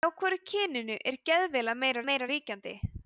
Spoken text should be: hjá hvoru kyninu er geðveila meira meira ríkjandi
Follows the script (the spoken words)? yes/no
yes